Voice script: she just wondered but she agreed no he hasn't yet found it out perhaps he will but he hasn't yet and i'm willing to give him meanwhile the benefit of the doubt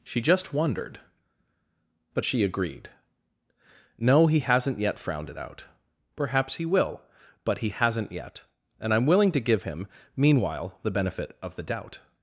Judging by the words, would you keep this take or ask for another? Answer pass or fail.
fail